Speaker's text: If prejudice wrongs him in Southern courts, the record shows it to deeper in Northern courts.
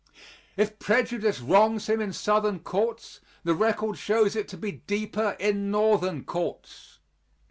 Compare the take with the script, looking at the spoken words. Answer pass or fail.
fail